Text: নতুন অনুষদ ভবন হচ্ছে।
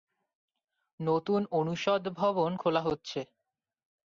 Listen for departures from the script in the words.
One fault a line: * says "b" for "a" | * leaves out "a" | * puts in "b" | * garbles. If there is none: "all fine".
* puts in "খোলা"